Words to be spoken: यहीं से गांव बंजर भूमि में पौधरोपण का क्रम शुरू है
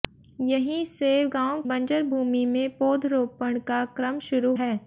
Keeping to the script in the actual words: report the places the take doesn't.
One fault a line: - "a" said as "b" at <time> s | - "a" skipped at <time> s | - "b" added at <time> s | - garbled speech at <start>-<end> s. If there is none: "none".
none